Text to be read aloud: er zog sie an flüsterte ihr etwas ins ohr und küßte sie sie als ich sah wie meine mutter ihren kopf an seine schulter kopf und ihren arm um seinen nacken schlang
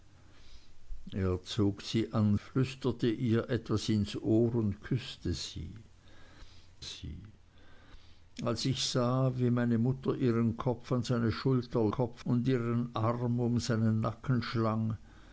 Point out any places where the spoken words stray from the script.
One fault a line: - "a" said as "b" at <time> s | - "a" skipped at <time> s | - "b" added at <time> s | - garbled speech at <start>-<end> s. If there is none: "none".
none